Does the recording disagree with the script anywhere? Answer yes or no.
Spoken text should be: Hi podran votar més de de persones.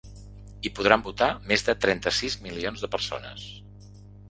yes